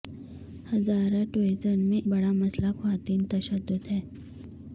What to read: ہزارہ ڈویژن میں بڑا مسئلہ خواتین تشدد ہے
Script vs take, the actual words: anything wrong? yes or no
no